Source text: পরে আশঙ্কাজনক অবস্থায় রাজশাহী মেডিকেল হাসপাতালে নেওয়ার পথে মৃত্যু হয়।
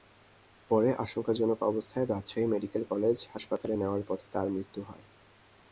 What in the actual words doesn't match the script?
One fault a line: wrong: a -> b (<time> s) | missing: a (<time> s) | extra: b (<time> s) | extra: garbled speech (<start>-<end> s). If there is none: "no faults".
extra: কলেজ (2.8 s)
extra: তাঁর (4.3 s)